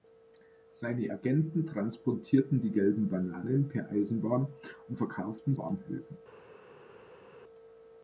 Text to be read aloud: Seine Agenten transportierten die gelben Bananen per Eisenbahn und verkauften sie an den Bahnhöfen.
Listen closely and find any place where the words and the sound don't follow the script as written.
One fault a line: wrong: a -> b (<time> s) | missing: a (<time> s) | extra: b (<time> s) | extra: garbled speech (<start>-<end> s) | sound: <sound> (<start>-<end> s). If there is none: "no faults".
missing: sie an den (5.5 s)